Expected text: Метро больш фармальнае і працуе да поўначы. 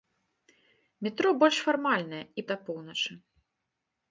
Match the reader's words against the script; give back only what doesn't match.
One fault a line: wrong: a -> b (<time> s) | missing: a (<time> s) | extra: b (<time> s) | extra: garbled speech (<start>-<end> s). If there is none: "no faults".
missing: працуе (2.5 s)